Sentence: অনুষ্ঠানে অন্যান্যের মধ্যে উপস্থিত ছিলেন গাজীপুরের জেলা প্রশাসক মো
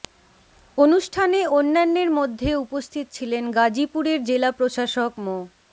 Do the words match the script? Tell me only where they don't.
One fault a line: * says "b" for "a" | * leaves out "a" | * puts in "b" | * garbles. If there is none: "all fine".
all fine